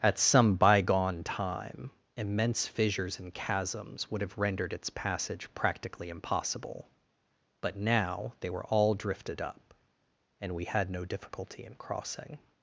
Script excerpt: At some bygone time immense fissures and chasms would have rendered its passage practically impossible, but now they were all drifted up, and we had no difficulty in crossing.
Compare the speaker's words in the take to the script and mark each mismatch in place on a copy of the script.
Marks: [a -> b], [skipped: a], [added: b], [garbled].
At some bygone time immense fissures and chasms would have rendered its passage practically impossible, but now they were all drifted up, and we had no difficulty in crossing.